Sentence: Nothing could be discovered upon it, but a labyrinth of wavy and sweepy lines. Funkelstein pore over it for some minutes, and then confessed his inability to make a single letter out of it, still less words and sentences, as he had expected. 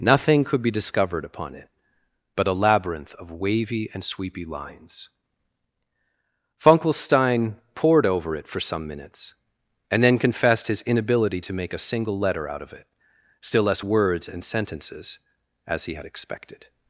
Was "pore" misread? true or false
true